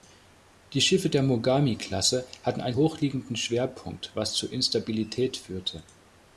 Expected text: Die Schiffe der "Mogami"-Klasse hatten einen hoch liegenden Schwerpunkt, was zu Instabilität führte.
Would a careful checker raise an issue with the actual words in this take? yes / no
no